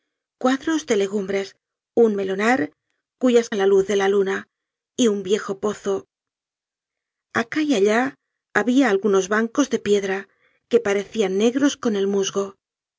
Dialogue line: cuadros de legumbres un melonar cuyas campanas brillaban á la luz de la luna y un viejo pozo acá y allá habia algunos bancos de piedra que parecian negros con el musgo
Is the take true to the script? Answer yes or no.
no